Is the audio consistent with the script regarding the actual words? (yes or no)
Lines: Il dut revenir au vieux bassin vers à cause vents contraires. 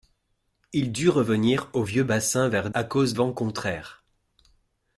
yes